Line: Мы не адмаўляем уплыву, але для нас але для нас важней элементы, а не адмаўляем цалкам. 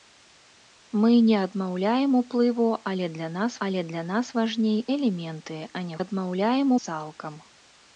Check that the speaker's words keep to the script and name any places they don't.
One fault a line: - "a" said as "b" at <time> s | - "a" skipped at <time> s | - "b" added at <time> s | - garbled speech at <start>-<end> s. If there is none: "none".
none